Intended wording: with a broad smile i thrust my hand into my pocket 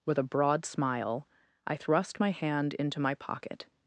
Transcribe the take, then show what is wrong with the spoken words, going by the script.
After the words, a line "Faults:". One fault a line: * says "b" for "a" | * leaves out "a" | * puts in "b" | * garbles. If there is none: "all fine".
with a broad smile i thrust my hand into my pocket
Faults:
all fine